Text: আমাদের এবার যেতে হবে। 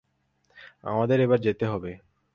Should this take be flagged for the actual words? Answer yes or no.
no